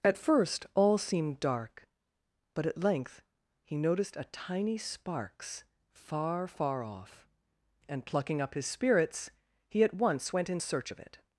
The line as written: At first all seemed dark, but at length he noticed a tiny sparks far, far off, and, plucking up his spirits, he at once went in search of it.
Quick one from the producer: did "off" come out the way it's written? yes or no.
yes